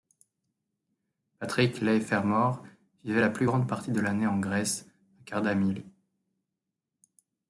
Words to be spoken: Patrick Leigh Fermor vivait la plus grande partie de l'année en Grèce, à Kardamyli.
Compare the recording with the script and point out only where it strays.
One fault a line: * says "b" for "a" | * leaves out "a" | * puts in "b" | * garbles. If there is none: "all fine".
all fine